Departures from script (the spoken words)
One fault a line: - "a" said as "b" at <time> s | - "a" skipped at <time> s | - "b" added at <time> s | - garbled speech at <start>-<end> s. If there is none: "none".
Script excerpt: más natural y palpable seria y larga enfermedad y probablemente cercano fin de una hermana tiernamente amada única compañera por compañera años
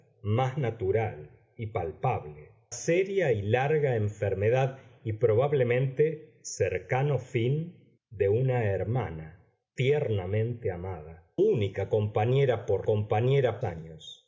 none